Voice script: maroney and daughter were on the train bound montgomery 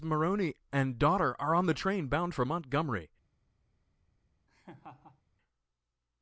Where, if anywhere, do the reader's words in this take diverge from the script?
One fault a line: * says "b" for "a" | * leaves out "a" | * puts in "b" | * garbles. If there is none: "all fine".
* says "are" for "were"
* puts in "for"